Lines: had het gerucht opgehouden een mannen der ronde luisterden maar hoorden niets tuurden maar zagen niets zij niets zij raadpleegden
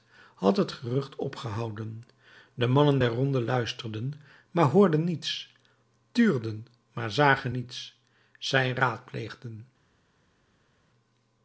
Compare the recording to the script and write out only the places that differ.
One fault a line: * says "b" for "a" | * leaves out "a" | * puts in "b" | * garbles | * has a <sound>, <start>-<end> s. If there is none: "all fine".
* says "de" for "een"
* leaves out "niets zij"